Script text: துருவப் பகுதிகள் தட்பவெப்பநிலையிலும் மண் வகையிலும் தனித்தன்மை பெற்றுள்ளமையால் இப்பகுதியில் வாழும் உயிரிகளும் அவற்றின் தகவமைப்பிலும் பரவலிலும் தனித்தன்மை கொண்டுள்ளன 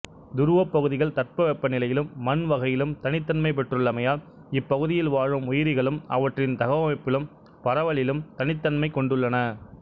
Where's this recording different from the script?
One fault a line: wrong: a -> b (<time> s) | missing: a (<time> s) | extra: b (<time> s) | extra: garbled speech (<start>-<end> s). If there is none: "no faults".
no faults